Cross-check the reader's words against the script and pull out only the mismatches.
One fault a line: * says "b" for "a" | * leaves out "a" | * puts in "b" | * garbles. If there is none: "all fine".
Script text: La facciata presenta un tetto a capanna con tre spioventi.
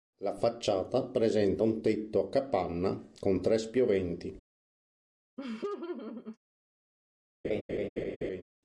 all fine